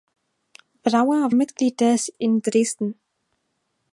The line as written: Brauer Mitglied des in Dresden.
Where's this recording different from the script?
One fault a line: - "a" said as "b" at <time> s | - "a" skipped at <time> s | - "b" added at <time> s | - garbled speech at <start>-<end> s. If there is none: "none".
none